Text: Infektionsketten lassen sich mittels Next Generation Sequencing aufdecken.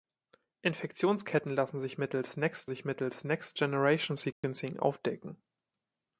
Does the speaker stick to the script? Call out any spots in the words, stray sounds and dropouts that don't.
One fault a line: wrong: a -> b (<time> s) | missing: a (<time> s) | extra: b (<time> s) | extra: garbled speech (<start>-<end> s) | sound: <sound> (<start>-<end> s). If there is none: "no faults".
extra: sich mittels Next (2.7 s)
sound: dropout (4.3-4.4 s)